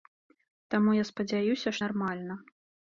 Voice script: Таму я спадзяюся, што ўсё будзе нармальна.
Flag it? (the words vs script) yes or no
yes